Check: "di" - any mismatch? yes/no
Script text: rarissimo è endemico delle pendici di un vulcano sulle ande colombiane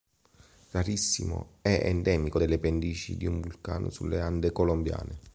no